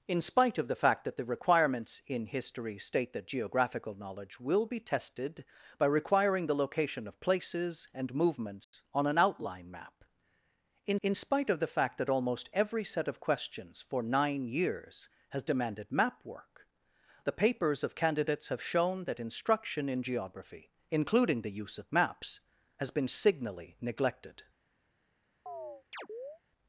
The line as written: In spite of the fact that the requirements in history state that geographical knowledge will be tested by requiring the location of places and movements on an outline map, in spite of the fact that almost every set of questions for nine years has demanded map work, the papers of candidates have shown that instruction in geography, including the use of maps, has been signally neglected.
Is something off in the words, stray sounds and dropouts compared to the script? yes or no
yes